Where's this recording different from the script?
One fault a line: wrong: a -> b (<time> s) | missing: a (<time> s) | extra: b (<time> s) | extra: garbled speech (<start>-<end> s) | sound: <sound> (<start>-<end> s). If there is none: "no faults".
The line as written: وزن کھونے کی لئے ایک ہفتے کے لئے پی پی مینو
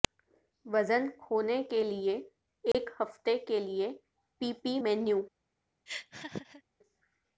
wrong: کی -> کے (1.7 s)
sound: dropout (2.7-2.7 s)
sound: laugh (5.9-6.6 s)